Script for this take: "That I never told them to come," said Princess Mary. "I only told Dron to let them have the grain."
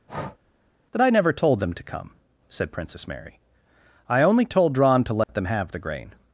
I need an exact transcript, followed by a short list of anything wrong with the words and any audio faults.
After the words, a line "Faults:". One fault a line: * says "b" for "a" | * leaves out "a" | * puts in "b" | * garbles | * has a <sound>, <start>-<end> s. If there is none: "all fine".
"That I never told them to come," said Princess Mary. "I only told Dron to let them have the grain."
Faults:
* has a breath, 0.1-0.4 s
* has a dropout, 5.2-5.3 s